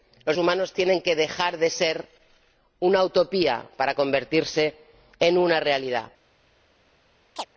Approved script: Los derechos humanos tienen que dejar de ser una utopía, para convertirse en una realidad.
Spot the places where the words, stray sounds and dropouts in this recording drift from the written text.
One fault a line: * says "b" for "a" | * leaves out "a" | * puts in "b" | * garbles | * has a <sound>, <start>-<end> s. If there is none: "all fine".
* leaves out "derechos"
* has a chirp, 7.4-7.5 s